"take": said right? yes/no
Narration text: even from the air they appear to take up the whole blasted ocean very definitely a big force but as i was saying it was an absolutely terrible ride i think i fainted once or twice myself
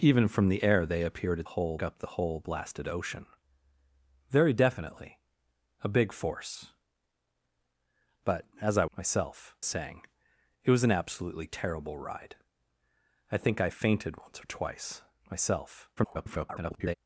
no